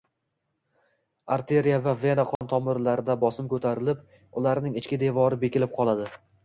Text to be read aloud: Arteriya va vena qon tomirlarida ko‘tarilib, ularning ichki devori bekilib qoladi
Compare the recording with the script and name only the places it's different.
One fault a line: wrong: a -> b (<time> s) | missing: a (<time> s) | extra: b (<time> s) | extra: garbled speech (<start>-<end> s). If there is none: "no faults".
extra: bosim (3.3 s)